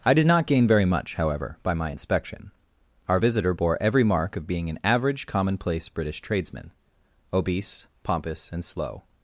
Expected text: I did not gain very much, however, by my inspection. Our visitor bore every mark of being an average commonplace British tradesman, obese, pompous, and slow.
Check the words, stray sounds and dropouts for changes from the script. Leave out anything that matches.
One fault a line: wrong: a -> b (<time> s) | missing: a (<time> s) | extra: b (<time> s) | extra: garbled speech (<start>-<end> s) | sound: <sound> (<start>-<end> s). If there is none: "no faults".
no faults